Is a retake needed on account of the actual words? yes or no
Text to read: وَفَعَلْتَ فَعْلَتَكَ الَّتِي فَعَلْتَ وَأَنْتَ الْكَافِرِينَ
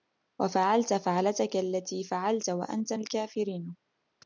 no